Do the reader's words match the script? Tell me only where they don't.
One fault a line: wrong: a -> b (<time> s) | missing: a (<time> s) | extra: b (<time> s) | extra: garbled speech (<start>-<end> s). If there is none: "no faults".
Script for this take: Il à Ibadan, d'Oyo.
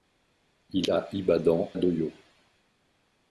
no faults